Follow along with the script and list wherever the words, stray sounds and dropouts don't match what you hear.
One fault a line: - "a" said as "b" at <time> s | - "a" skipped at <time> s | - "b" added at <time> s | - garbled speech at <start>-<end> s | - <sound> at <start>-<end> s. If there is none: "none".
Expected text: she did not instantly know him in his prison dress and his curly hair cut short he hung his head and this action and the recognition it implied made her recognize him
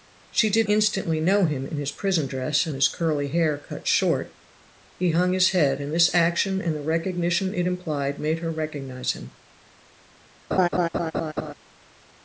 - "not" skipped at 0.7 s
- laugh at 10.5-11.5 s